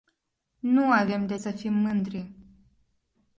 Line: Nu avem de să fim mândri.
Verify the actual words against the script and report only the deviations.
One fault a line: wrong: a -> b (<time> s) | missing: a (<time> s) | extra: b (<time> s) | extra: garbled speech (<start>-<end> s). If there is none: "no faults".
no faults